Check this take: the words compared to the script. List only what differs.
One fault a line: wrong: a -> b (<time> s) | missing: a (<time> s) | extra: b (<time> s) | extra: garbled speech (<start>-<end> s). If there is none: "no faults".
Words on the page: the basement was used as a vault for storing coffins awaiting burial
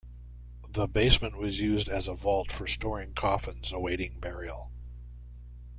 no faults